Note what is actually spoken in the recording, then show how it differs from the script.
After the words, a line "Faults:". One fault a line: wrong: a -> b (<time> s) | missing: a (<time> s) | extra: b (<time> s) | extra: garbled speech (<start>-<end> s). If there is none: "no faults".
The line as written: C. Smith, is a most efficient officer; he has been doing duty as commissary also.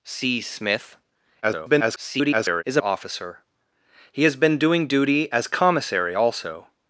C. Smith, [garbled] is a officer; he has been doing duty as commissary also.
Faults:
extra: garbled speech (1.4-2.6 s)
missing: most efficient (2.8 s)